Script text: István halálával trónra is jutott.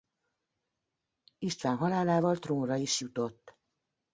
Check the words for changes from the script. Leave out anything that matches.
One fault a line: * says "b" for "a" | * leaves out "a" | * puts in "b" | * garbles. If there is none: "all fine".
all fine